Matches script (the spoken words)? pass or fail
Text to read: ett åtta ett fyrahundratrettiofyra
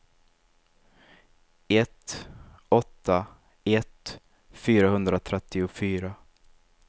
pass